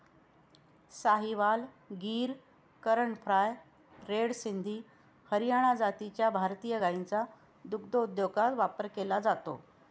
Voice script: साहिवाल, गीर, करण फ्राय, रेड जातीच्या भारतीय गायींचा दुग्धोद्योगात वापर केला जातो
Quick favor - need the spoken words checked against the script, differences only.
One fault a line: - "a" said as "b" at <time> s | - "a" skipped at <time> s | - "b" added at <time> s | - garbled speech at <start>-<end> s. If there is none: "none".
- "सिंधी हरियाणा" added at 4.3 s